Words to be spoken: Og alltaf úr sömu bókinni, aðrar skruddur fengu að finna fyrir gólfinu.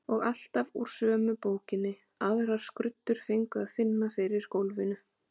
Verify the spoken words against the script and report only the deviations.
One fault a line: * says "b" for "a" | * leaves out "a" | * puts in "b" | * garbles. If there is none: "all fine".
all fine